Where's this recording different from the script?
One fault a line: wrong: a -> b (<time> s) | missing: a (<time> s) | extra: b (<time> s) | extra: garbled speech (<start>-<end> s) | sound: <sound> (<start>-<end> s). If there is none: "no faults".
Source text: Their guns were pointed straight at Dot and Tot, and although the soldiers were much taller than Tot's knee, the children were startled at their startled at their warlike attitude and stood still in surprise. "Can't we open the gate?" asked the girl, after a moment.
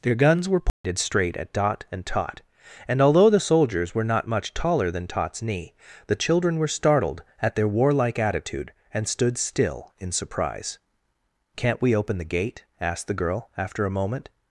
sound: dropout (0.7-0.8 s)
extra: not (4.0 s)
missing: startled at their (7.7 s)